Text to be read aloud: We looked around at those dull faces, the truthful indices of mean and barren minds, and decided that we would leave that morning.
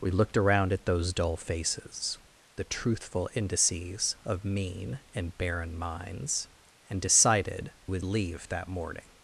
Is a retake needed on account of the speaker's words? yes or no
yes